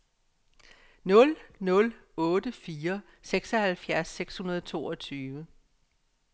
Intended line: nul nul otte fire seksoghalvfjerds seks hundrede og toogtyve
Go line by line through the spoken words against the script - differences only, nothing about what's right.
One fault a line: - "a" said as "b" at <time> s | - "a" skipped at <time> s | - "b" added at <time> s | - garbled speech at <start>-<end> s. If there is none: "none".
none